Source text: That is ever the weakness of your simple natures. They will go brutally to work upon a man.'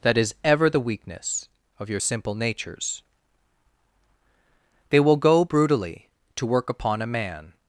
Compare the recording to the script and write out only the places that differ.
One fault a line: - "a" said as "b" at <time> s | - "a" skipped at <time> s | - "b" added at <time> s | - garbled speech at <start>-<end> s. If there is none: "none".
none